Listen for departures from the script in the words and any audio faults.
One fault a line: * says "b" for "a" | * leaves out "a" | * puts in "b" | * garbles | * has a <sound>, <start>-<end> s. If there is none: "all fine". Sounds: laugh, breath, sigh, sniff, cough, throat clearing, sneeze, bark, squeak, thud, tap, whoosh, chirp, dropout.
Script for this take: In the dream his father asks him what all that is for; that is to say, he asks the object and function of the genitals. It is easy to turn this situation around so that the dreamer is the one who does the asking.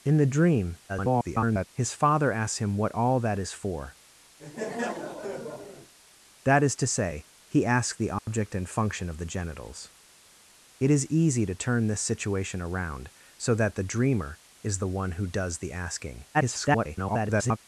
* garbles
* has a laugh, 4.4-5.9 s
* has a dropout, 8.2-8.3 s
* garbles